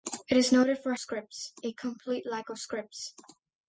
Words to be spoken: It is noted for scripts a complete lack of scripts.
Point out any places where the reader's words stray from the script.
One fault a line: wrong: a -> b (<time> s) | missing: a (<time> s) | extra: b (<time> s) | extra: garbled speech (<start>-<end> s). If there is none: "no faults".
no faults